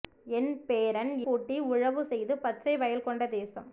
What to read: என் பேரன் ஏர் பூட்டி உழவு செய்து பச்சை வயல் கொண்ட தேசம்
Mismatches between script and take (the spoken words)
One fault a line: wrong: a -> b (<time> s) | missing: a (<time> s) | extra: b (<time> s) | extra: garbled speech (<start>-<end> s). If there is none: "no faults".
missing: ஏர் (1.1 s)